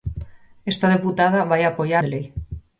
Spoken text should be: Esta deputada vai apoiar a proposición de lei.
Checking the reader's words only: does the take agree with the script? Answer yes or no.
no